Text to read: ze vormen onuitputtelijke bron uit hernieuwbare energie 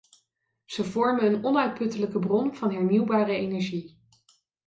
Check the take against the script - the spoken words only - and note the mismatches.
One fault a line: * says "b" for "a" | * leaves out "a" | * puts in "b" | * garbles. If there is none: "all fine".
* puts in "een"
* says "van" for "uit"